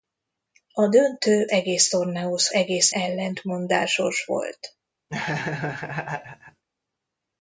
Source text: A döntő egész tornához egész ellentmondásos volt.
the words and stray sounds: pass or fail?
fail